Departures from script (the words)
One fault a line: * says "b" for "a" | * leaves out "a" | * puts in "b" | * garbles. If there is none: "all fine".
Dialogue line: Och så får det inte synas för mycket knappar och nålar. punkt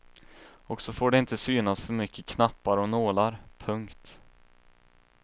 all fine